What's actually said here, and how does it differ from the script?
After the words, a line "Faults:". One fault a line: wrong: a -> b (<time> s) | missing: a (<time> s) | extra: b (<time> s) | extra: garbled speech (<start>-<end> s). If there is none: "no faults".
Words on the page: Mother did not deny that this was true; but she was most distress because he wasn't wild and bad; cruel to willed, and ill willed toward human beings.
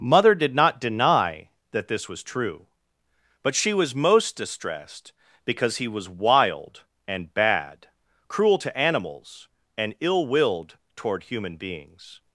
Mother did not deny that this was true; but she was most distressed because he was wild and bad; cruel to animals, and ill willed toward human beings.
Faults:
wrong: distress -> distressed (4.3 s)
wrong: wasn't -> was (5.9 s)
wrong: willed -> animals (8.8 s)